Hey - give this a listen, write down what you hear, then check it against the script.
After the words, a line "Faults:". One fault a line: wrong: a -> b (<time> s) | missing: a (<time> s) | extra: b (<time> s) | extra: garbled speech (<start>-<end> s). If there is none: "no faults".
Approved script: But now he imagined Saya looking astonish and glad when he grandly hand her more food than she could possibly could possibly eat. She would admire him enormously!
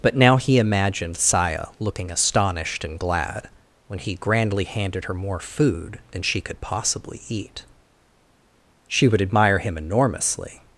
But now he imagined Saya looking astonished and glad when he grandly handed her more food than she could possibly eat. She would admire him enormously!
Faults:
wrong: astonish -> astonished (2.1 s)
wrong: hand -> handed (4.6 s)
missing: could possibly (7.2 s)